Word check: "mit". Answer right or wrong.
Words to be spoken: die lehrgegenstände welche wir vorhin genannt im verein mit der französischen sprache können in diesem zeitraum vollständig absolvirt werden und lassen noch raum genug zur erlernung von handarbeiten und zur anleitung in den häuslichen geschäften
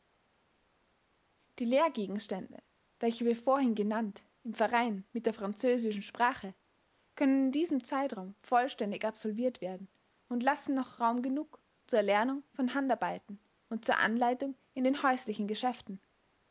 right